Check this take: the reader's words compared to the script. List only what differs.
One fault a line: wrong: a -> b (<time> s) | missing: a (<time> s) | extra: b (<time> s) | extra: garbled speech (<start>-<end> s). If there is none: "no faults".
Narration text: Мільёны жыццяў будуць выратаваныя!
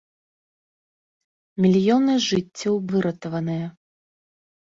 missing: будуць (2.8 s)